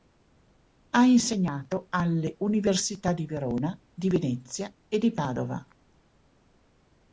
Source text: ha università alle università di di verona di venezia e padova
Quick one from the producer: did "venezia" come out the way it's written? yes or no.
yes